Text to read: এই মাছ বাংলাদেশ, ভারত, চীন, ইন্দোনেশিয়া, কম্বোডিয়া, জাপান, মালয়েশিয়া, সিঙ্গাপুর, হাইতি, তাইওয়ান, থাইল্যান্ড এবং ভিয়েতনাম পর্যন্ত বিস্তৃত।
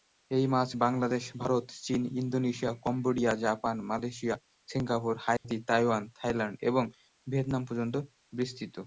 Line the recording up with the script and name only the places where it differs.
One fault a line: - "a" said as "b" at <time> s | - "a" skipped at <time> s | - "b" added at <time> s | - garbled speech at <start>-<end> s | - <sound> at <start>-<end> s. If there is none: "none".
- dropout at 5.4-5.4 s